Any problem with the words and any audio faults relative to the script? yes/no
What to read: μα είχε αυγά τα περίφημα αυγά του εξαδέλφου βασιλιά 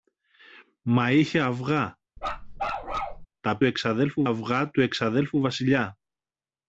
yes